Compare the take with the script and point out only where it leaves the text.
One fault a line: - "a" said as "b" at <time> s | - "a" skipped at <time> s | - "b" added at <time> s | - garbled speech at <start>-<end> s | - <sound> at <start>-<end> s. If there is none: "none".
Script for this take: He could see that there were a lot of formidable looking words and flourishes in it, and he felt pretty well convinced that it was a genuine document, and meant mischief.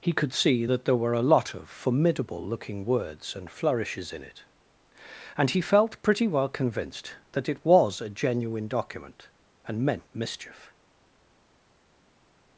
none